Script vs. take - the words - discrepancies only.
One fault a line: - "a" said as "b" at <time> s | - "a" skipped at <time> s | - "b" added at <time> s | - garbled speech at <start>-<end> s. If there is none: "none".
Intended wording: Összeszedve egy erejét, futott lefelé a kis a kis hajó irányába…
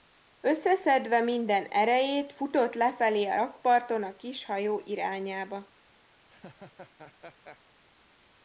- "egy" said as "minden" at 1.2 s
- "kis" said as "rakparton" at 3.3 s